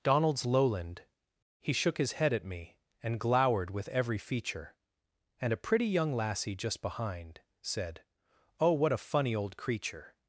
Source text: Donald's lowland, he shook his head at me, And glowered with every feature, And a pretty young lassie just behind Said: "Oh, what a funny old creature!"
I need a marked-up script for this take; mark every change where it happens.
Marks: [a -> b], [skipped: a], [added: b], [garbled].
Donald's lowland, he shook his head at me, And glowered with every feature, And a pretty young lassie just behind Said: "Oh, what a funny old creature!"